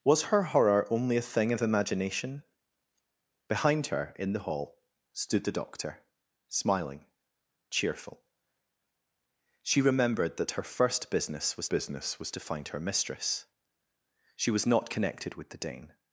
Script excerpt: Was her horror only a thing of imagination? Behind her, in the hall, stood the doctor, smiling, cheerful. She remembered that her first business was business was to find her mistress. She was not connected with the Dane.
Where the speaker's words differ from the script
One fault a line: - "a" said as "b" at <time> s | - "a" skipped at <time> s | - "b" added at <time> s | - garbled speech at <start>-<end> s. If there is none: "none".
none